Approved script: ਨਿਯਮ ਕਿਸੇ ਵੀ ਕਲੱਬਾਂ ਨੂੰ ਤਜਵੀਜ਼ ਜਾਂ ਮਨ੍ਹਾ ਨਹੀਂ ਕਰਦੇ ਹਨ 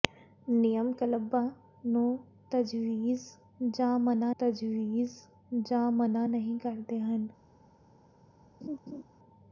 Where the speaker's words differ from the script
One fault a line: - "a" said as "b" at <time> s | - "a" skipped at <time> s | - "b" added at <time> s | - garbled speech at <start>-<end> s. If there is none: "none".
- "ਕਿਸੇ ਵੀ ਕਲੱਬਾਂ ਨੂੰ" said as "ਕਲੱਬਾਂ ਨੂੰ ਤਜਵੀਜ਼ ਜਾਂ ਮਨ੍ਹਾ" at 0.9 s